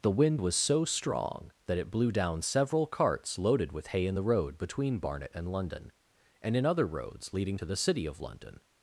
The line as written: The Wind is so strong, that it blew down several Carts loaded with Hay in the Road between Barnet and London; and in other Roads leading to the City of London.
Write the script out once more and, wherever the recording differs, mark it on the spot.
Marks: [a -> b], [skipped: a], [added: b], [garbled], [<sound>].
The Wind [is -> was] so strong, that it blew down several Carts loaded with Hay in the Road between Barnet and London; and in other Roads leading to the City of London.